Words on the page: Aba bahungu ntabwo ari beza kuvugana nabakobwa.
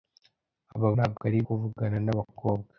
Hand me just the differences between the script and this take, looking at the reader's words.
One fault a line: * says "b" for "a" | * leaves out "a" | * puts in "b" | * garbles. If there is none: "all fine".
* leaves out "bahungu"
* leaves out "beza"